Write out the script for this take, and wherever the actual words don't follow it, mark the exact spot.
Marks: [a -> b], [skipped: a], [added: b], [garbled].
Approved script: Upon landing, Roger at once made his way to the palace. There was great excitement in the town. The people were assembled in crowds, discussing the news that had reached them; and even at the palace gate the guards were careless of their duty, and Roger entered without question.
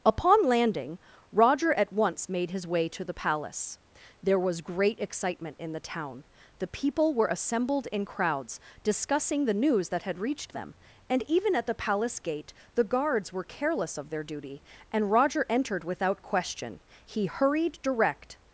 Upon landing, Roger at once made his way to the palace. There was great excitement in the town. The people were assembled in crowds, discussing the news that had reached them; and even at the palace gate the guards were careless of their duty, and Roger entered without question. [added: He hurried direct]